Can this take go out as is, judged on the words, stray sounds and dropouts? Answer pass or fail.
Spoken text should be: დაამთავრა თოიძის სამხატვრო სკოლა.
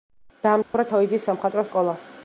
fail